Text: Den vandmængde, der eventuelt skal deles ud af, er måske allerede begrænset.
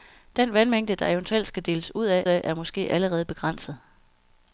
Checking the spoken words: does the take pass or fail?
fail